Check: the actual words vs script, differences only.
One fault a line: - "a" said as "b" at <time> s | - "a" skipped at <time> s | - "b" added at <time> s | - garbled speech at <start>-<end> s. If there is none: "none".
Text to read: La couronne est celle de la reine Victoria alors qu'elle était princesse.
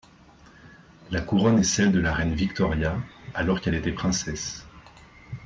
none